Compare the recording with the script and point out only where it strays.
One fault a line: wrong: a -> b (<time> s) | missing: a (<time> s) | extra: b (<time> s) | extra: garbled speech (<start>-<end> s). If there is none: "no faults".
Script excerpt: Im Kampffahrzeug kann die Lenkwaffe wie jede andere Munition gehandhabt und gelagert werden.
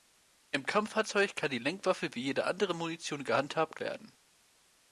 missing: und gelagert (3.8 s)